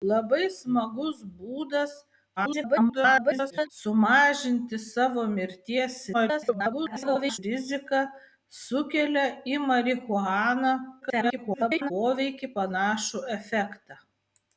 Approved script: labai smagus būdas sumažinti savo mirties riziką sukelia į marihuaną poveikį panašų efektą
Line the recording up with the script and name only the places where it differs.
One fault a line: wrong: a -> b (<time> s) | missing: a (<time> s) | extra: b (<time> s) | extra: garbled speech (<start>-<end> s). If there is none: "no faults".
extra: garbled speech (2.4-3.7 s)
extra: garbled speech (6.1-7.4 s)
extra: garbled speech (11.0-11.9 s)